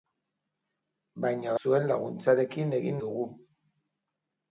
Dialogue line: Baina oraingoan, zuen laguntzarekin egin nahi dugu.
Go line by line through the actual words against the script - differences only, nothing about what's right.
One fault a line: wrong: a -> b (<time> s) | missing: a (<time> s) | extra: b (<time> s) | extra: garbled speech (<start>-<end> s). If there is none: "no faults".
missing: oraingoan (1.5 s)
missing: nahi (3.0 s)